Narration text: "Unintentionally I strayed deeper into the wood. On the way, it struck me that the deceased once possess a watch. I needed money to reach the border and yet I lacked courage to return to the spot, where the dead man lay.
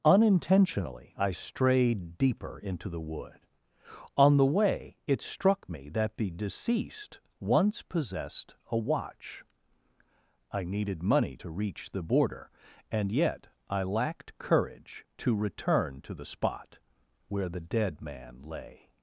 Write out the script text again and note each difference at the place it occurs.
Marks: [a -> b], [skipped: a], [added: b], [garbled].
"Unintentionally I strayed deeper into the wood. On the way, it struck me that the deceased once [possess -> possessed] a watch. I needed money to reach the border and yet I lacked courage to return to the spot, where the dead man lay.